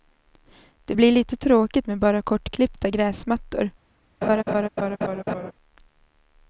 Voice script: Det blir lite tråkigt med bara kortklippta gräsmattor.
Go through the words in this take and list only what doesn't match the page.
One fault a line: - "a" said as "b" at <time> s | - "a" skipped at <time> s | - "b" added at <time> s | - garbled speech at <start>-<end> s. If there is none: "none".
none